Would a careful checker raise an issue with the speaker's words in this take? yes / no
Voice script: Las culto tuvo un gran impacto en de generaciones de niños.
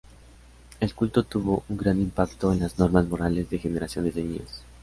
yes